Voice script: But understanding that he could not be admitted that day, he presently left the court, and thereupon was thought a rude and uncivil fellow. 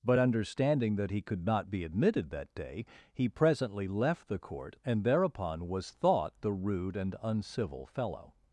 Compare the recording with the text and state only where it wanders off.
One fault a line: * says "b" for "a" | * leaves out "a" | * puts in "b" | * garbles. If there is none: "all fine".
* says "the" for "a"